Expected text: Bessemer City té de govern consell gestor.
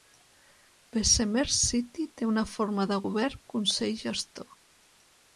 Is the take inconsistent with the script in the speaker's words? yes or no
yes